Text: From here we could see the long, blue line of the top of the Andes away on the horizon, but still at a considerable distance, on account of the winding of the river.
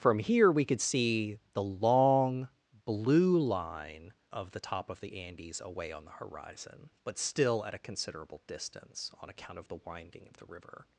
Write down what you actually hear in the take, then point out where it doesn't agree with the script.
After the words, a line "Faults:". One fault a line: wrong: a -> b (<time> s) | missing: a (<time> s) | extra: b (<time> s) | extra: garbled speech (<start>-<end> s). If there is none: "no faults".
From here we could see the long, blue line of the top of the Andes away on the horizon, but still at a considerable distance, on account of the winding of the river.
Faults:
no faults